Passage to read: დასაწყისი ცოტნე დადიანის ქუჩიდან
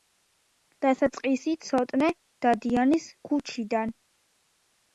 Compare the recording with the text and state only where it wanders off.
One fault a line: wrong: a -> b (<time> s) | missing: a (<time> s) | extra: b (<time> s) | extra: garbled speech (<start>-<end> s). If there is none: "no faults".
no faults